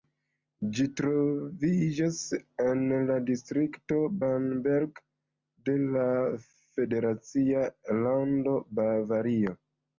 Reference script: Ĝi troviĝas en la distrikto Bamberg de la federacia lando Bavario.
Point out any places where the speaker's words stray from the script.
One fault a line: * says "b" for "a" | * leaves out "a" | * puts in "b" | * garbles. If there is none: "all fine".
all fine